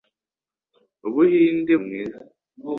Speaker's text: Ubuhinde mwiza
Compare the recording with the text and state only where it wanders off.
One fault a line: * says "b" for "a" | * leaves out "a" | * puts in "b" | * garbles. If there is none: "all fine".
all fine